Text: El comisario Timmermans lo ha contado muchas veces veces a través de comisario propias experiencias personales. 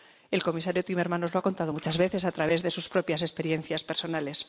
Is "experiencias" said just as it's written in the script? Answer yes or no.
yes